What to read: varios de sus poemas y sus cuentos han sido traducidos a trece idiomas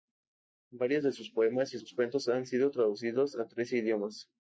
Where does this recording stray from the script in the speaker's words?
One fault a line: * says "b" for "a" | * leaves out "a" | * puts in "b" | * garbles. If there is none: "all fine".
all fine